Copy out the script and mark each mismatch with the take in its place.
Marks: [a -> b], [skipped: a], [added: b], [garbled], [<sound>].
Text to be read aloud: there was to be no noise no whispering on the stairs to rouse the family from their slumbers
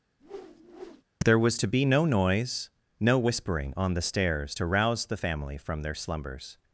[whoosh] there was to be no noise no whispering on the stairs to rouse the family from their slumbers